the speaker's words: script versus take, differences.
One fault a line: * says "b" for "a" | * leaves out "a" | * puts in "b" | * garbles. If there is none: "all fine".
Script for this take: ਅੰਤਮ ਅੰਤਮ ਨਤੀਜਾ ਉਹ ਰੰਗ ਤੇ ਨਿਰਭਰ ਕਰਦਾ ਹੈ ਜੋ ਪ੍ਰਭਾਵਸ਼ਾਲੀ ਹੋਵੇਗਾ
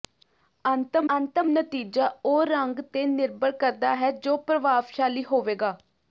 all fine